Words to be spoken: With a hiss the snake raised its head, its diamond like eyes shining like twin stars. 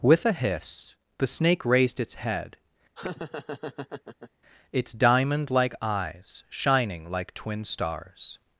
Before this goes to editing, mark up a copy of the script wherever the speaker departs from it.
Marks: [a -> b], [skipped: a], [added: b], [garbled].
With a hiss the snake raised its head, its diamond like eyes shining like twin stars.